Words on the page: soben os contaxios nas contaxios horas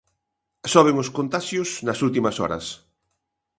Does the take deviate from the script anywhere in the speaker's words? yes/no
yes